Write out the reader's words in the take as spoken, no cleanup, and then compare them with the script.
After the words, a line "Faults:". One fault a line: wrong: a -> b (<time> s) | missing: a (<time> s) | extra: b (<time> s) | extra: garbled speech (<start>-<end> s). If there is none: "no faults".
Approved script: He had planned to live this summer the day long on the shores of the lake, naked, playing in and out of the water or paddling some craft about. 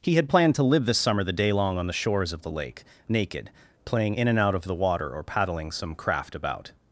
He had planned to live this summer the day long on the shores of the lake, naked, playing in and out of the water or paddling some craft about.
Faults:
no faults